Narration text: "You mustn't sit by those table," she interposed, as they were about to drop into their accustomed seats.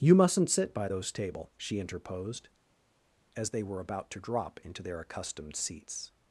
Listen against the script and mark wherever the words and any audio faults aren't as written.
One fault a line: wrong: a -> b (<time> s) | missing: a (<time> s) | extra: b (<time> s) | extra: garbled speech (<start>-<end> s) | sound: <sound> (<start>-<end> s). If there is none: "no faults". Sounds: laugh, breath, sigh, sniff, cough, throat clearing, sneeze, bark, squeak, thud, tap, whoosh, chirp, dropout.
no faults